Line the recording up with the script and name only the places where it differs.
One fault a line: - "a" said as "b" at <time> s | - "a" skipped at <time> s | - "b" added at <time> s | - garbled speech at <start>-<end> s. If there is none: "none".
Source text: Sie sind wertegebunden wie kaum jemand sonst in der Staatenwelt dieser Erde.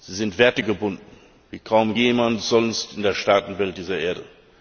none